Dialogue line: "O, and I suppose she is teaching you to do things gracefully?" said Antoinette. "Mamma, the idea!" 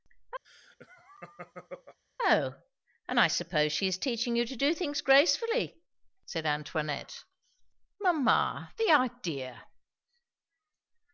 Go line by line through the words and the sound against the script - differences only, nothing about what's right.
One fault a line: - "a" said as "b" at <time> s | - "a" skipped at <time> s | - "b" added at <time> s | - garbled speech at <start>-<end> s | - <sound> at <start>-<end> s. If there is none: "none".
- laugh at 0.4-2.0 s